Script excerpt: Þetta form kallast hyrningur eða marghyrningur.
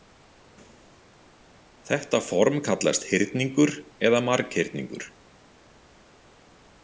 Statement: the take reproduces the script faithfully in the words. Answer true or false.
true